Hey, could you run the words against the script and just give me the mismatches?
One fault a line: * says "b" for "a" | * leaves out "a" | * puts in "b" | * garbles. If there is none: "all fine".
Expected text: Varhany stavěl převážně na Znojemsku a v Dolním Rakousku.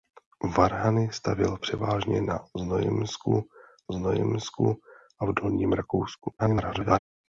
* puts in "Znojemsku"
* garbles